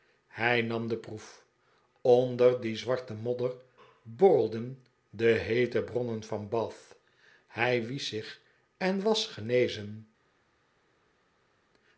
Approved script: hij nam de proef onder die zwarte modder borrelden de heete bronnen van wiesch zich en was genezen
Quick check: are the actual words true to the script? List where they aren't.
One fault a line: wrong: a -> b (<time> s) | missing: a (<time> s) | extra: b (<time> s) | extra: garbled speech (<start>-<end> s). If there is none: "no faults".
extra: bath hij (6.5 s)